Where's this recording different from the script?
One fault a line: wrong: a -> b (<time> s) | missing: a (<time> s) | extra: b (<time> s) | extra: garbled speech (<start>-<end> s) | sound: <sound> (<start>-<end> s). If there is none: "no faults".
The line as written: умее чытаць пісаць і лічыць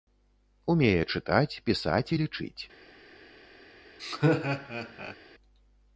sound: laugh (4.0-5.2 s)